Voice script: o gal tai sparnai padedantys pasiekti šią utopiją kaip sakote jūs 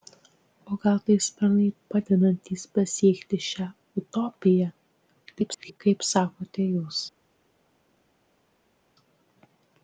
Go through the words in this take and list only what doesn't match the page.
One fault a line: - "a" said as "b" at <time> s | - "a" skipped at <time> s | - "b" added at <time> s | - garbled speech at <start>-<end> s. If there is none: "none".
- garbled speech at 5.3-5.8 s